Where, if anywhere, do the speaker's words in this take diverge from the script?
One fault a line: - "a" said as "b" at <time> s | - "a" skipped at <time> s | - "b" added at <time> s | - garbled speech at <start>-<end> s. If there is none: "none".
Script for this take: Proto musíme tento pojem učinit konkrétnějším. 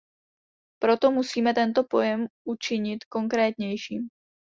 none